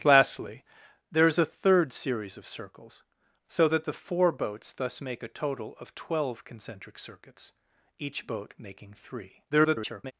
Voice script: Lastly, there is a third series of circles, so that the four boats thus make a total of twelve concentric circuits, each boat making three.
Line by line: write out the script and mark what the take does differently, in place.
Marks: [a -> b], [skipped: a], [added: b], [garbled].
Lastly, there is a third series of circles, so that the four boats thus make a total of twelve concentric circuits, each boat making three. [garbled]